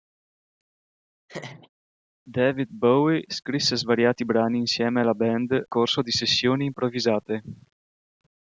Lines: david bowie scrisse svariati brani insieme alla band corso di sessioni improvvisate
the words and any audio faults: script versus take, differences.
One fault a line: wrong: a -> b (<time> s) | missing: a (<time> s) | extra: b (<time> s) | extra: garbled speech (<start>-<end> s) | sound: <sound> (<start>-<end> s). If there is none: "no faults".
sound: laugh (1.3-1.7 s)